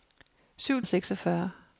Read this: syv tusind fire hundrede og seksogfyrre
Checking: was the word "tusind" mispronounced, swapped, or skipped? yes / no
yes